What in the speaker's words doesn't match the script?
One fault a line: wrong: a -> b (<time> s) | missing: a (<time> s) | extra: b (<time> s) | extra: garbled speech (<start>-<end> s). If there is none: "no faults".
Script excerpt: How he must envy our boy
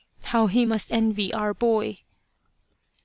no faults